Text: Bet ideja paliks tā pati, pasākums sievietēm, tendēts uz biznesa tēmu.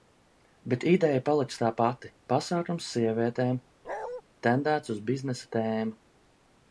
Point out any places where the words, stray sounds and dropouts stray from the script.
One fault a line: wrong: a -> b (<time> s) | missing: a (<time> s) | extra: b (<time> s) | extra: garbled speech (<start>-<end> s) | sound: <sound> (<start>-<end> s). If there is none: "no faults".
sound: bark (3.8-4.2 s)